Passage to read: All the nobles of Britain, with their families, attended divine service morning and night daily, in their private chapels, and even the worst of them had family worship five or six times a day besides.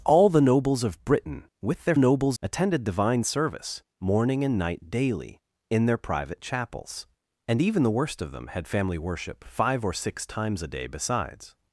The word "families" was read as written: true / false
false